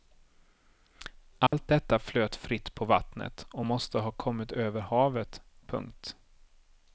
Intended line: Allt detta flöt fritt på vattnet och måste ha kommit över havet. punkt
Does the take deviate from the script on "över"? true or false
false